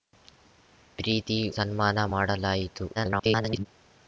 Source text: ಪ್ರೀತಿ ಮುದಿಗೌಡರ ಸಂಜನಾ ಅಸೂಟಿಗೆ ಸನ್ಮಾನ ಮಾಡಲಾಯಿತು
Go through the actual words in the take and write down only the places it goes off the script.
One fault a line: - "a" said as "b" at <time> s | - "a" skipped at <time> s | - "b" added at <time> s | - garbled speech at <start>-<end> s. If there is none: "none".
- "ಮುದಿಗೌಡರ ಸಂಜನಾ ಅಸೂಟಿಗೆ" skipped at 1.4 s
- garbled speech at 2.9-3.7 s